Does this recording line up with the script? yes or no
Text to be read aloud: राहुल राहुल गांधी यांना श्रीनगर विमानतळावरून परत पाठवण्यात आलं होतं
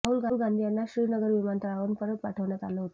no